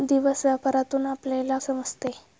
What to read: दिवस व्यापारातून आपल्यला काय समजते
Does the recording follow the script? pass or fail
fail